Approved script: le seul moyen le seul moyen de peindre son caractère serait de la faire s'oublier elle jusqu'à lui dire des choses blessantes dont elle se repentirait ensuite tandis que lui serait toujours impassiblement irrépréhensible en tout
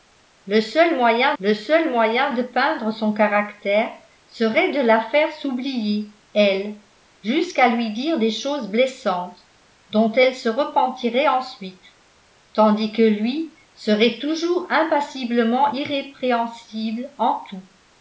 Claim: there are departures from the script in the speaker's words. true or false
false